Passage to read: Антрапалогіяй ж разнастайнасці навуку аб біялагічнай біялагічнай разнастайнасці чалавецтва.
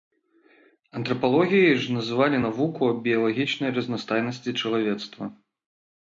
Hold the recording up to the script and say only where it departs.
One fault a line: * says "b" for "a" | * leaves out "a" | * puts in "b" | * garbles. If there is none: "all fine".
* says "называлі" for "разнастайнасці"
* leaves out "біялагічнай"